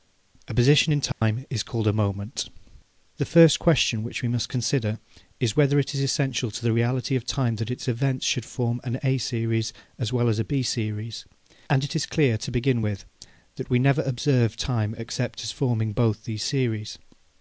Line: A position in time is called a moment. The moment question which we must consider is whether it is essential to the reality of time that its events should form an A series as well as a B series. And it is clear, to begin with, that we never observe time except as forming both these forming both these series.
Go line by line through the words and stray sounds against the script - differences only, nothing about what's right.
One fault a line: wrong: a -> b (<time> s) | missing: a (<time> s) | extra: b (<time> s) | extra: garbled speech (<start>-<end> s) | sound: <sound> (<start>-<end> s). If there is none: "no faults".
sound: dropout (1.1-1.2 s)
wrong: moment -> first (3.2 s)
missing: forming both these (16.4 s)